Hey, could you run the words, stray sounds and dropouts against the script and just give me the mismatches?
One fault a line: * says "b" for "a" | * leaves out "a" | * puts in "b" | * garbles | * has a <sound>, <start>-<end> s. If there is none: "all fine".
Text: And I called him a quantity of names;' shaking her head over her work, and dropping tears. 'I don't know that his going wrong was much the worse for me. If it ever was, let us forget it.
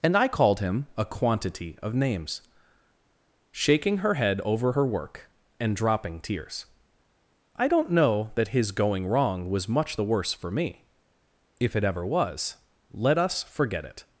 all fine